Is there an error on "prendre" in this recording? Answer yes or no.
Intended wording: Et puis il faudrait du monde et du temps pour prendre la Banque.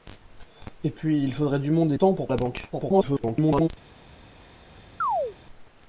yes